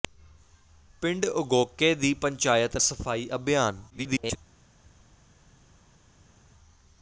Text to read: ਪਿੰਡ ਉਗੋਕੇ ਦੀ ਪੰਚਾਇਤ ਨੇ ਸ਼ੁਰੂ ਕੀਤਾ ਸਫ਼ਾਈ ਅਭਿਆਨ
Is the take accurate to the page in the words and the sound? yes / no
no